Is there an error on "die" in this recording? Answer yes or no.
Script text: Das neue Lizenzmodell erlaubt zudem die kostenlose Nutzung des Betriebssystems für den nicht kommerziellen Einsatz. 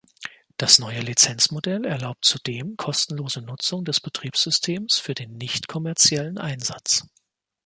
yes